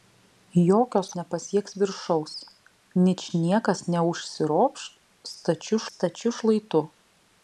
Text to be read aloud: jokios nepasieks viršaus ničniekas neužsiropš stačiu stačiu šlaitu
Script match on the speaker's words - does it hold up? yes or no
yes